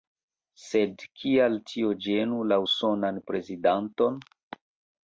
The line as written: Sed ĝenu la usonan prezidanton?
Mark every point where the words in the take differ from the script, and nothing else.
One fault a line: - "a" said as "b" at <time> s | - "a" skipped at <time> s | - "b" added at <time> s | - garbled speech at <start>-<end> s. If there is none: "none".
- "kial tio" added at 1.2 s